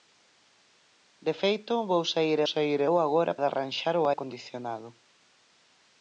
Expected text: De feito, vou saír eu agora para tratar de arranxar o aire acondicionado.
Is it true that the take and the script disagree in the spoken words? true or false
true